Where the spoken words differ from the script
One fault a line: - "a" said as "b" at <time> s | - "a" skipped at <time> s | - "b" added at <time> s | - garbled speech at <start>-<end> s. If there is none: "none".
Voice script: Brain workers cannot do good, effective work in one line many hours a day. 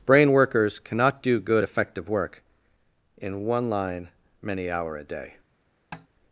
- "hours" said as "hour" at 4.7 s